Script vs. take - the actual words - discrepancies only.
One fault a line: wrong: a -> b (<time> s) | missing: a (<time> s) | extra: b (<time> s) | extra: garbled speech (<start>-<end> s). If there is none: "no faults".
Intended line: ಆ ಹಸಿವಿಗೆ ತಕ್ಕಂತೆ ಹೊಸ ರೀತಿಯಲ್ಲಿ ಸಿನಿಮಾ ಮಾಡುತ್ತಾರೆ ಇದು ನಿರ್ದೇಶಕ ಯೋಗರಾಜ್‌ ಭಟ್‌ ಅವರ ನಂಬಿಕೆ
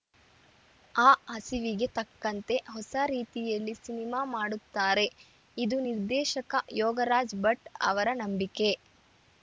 no faults